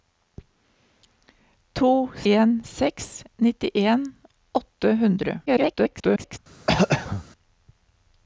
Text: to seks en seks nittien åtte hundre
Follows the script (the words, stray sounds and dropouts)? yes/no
no